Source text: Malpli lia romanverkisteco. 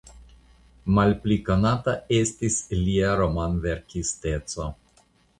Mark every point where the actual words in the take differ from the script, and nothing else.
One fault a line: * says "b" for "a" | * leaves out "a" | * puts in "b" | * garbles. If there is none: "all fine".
* puts in "konata estis"